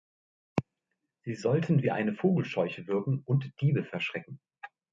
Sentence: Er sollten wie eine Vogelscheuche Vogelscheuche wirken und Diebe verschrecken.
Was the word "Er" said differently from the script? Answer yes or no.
yes